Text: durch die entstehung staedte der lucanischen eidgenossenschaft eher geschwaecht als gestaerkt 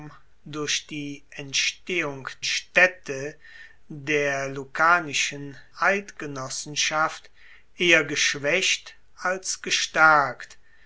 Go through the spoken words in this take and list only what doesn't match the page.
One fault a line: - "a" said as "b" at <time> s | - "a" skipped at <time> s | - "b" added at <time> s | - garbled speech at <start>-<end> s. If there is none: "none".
none